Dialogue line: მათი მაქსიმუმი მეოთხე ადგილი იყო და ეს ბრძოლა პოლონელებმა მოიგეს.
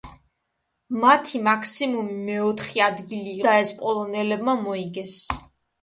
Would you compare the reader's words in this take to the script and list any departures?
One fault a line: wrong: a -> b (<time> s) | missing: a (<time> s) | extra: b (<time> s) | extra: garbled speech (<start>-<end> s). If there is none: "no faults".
missing: იყო (3.4 s)
missing: ბრძოლა (3.7 s)